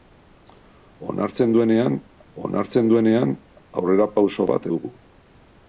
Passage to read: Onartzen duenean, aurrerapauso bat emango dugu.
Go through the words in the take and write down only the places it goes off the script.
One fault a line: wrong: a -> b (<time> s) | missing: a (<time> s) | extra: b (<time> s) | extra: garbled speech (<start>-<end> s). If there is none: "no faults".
extra: onartzen duenean (2.4 s)
missing: emango (4.7 s)